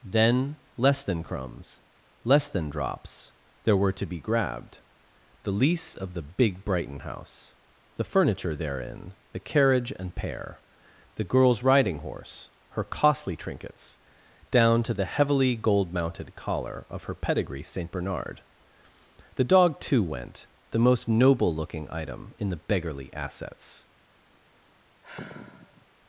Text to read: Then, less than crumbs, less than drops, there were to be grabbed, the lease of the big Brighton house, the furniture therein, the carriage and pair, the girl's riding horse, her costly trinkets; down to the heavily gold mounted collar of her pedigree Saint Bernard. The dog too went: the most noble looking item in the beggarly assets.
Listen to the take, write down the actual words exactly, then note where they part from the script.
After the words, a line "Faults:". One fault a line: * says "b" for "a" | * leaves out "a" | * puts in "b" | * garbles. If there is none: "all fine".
Then, less than crumbs, less than drops, there were to be grabbed, the lease of the big Brighton house, the furniture therein, the carriage and pair, the girl's riding horse, her costly trinkets; down to the heavily gold mounted collar of her pedigree Saint Bernard. The dog too went: the most noble looking item in the beggarly assets.
Faults:
all fine